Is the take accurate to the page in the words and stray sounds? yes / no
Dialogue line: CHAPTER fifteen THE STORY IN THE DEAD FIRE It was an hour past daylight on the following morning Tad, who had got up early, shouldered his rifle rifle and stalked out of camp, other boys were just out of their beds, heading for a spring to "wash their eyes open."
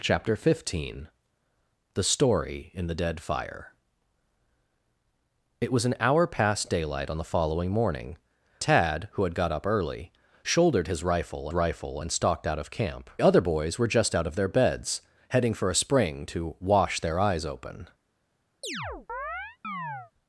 no